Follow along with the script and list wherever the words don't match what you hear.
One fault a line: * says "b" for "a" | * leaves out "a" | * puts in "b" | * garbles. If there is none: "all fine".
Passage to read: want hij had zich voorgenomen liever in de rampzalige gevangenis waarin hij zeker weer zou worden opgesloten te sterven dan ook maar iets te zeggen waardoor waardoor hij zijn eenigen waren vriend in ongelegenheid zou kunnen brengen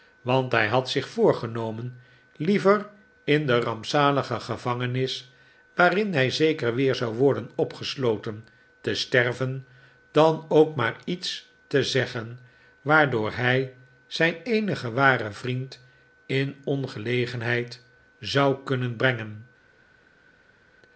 * leaves out "waardoor"